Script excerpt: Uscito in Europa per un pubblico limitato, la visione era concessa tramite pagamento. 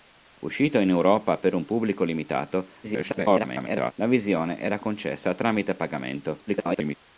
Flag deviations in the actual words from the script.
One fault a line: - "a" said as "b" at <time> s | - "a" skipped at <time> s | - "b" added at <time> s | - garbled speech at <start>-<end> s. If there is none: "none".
- garbled speech at 2.8-3.9 s
- garbled speech at 6.5-7.0 s